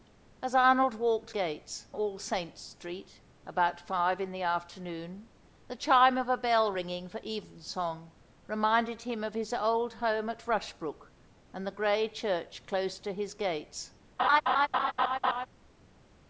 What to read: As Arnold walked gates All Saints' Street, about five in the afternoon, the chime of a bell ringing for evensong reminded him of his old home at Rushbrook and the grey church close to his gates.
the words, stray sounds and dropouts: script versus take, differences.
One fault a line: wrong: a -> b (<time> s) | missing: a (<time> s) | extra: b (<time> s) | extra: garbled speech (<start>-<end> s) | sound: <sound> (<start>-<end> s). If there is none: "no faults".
sound: laugh (14.2-15.5 s)